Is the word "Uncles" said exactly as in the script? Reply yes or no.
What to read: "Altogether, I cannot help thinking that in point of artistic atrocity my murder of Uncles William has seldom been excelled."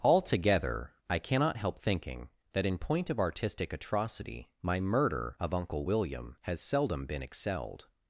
no